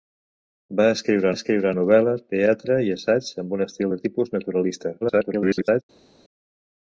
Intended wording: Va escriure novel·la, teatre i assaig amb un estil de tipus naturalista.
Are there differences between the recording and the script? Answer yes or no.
yes